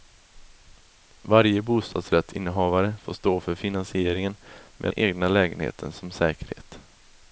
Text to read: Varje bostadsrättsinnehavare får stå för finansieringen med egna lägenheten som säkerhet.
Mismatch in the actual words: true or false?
false